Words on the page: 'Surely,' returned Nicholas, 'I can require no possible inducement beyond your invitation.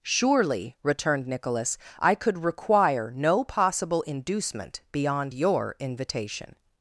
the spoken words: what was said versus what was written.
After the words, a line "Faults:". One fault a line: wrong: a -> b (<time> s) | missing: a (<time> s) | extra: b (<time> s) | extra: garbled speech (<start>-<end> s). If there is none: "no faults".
'Surely,' returned Nicholas, 'I could require no possible inducement beyond your invitation.
Faults:
wrong: can -> could (2.1 s)